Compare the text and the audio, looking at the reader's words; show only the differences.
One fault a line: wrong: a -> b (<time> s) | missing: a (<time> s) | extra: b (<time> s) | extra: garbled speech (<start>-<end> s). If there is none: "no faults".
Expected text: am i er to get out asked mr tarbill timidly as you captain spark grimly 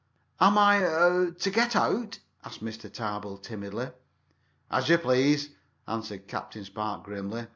extra: please answered (5.0 s)